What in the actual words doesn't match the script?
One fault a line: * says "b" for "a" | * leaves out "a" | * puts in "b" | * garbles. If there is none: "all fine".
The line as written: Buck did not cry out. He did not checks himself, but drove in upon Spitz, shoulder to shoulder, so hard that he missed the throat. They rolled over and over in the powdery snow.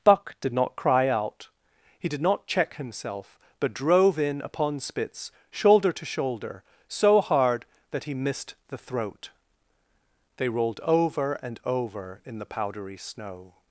* says "check" for "checks"